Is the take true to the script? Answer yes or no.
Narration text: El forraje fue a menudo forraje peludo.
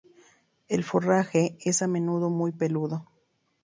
no